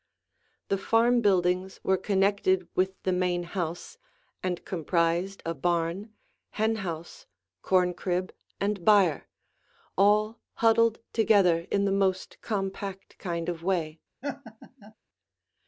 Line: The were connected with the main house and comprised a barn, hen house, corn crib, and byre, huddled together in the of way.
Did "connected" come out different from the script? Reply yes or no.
no